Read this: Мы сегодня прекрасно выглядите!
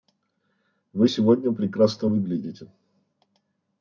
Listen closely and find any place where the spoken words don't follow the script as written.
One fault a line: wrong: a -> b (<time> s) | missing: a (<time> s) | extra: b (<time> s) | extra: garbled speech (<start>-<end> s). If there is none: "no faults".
wrong: Мы -> Вы (0.9 s)